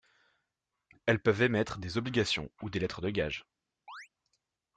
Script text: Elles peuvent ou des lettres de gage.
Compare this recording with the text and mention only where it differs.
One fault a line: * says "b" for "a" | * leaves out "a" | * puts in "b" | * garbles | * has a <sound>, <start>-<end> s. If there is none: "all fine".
* puts in "émettre des obligations"
* has a chirp, 3.9-4.1 s